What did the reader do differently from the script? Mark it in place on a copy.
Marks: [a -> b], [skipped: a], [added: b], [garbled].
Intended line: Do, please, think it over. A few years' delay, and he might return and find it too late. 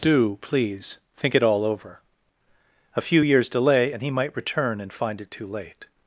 Do, please, think it [added: all] over. A few years' delay, and he might return and find it too late.